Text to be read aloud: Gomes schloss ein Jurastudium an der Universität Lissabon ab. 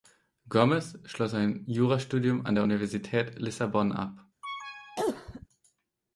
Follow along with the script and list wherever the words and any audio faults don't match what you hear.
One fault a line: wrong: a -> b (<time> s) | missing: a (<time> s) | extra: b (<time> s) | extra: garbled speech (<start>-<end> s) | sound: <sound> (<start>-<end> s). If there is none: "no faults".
sound: cough (4.4-5.5 s)